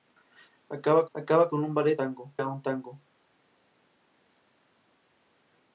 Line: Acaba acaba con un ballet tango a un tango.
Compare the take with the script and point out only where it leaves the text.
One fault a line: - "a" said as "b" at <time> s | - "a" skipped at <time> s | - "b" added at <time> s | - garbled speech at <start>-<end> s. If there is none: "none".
none